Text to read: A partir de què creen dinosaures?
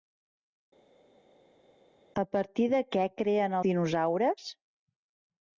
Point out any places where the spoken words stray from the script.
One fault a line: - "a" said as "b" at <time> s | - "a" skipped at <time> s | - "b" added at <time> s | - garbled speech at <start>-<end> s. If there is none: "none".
none